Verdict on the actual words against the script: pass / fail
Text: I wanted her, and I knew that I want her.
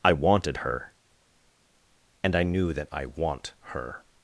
pass